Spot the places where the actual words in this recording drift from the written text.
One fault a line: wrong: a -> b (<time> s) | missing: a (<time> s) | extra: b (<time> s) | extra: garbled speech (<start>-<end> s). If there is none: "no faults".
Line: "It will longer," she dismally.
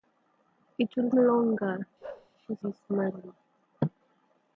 no faults